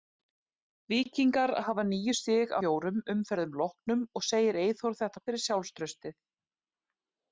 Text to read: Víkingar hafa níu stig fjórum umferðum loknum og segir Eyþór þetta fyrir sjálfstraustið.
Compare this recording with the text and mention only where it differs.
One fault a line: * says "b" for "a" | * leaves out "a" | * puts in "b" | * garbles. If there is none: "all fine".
all fine